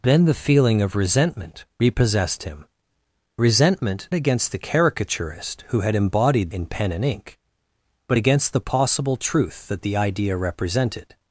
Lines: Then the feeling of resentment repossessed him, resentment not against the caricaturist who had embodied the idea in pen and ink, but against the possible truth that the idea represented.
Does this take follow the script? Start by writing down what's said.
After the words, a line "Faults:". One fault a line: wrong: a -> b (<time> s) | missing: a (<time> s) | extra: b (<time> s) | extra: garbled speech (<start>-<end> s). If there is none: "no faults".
Then the feeling of resentment repossessed him, resentment against the caricaturist who had embodied in pen and ink, but against the possible truth that the idea represented.
Faults:
missing: not (4.1 s)
missing: the idea (6.5 s)